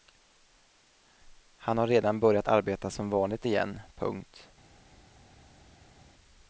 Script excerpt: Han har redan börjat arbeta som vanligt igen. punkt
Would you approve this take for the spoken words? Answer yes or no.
yes